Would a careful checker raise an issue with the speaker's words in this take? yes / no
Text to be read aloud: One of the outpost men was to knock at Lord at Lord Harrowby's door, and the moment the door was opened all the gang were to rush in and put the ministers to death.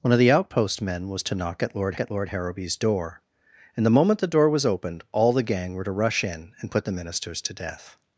no